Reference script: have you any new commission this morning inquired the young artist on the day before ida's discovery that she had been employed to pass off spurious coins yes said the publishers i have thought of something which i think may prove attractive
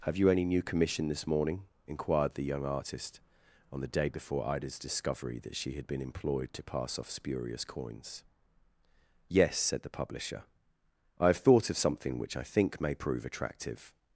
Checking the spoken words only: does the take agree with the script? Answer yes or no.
no